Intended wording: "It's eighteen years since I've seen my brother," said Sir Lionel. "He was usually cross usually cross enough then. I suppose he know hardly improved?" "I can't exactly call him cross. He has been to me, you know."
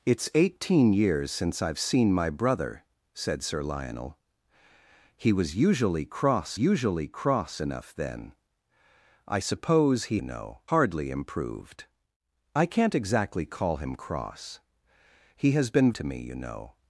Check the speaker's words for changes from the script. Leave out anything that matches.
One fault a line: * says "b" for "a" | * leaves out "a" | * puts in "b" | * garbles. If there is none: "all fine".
all fine